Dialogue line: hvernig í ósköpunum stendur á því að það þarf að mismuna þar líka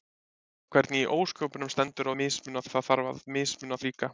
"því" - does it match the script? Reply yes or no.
no